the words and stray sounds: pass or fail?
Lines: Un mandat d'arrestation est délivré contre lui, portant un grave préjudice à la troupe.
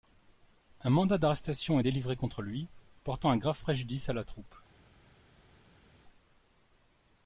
pass